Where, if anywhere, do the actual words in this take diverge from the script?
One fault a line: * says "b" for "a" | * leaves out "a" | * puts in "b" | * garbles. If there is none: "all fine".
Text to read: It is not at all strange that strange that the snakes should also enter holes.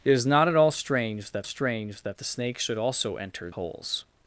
all fine